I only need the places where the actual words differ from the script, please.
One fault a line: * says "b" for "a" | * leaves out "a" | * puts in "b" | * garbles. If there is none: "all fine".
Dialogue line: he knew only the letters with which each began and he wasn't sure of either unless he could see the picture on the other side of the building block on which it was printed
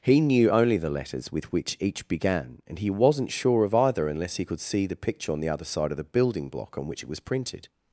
all fine